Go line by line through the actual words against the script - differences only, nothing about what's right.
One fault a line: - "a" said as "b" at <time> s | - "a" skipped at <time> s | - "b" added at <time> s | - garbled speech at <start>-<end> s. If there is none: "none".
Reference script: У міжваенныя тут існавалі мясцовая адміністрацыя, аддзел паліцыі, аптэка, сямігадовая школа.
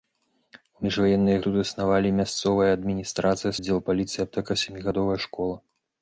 none